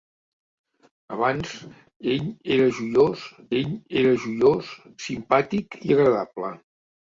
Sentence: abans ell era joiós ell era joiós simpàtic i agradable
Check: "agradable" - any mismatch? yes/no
no